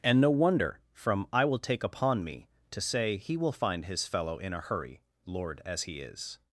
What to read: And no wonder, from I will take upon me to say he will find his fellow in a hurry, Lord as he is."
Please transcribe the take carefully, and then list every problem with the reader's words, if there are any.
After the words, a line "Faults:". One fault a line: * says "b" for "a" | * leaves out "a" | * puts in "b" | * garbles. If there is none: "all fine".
And no wonder, from I will take upon me to say he will find his fellow in a hurry, Lord as he is."
Faults:
all fine